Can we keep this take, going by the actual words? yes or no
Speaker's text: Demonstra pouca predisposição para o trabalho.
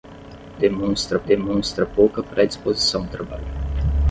no